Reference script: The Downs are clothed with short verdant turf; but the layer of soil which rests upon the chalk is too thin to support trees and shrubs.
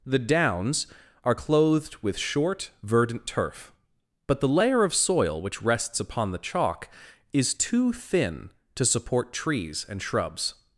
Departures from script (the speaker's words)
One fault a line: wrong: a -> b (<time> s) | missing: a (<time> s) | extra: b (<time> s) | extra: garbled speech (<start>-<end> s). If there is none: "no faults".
no faults